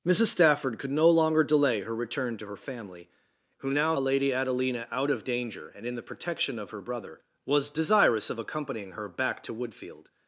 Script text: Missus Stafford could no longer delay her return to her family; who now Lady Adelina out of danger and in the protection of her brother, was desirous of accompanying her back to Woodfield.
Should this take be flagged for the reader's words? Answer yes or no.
no